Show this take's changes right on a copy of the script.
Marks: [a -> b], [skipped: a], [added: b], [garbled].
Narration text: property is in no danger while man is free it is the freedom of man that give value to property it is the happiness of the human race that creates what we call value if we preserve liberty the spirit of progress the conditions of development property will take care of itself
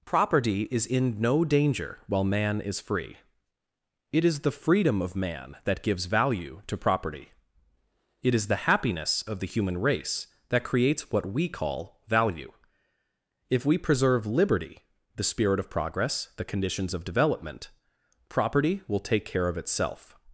property is in no danger while man is free it is the freedom of man that [give -> gives] value to property it is the happiness of the human race that creates what we call value if we preserve liberty the spirit of progress the conditions of development property will take care of itself